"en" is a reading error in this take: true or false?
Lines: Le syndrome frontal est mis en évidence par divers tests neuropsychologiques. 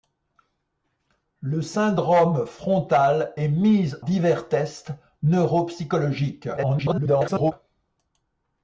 true